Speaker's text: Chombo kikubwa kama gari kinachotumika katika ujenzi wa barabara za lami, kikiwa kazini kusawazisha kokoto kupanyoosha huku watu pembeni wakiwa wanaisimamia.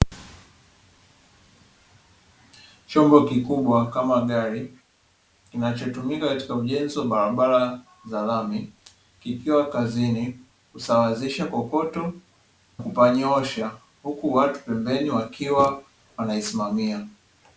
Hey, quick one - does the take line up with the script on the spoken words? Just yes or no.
yes